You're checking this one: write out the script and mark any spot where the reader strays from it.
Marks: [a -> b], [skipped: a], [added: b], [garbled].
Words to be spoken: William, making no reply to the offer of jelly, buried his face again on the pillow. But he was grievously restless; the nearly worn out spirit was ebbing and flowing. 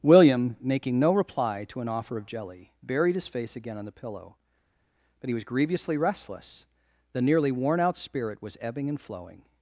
William, making no reply to [the -> an] offer of jelly, buried his face again on the pillow. But he was grievously restless; the nearly worn out spirit was ebbing and flowing.